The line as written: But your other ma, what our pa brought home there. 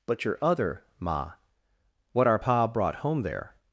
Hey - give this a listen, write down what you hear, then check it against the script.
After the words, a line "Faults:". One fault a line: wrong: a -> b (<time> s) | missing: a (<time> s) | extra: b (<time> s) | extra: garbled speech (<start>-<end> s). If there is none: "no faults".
But your other ma, what our pa brought home there.
Faults:
no faults